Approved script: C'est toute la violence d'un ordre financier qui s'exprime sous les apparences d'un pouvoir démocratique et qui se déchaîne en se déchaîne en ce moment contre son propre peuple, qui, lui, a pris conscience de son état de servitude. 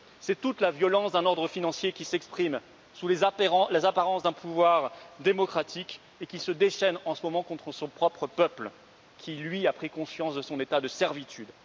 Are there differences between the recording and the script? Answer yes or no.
yes